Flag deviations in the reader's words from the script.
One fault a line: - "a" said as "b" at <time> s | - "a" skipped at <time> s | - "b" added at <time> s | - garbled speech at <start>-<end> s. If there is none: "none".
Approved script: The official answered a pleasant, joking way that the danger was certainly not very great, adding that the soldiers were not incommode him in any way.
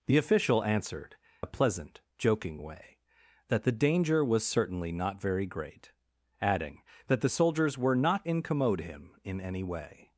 none